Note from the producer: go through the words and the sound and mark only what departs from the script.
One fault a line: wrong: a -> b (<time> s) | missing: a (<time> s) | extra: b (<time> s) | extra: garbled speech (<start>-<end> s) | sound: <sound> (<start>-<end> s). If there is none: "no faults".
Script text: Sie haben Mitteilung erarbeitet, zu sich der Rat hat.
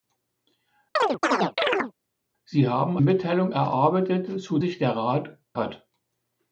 sound: chirp (1.0-1.9 s)